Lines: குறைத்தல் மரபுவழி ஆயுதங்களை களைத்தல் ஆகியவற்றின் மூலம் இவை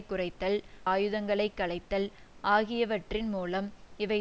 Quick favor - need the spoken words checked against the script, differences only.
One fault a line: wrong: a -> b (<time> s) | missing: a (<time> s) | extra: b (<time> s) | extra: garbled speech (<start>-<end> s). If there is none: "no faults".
missing: மரபுவழி (0.6 s)